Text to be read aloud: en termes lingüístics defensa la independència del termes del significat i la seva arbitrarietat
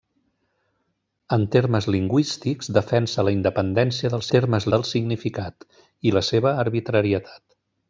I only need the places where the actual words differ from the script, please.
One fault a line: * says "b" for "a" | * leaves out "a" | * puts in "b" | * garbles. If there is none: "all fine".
all fine